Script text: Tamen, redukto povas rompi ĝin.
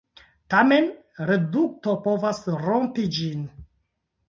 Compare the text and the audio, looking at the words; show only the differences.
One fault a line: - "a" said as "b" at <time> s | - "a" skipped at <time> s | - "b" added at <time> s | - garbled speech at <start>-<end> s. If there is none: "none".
none